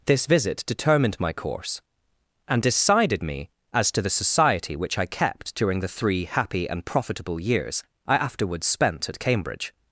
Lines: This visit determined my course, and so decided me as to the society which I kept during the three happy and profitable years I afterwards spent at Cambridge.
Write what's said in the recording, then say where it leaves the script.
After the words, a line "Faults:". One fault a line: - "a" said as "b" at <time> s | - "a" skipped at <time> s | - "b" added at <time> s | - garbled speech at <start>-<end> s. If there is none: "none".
This visit determined my course, and decided me as to the society which I kept during the three happy and profitable years I afterwards spent at Cambridge.
Faults:
- "so" skipped at 2.6 s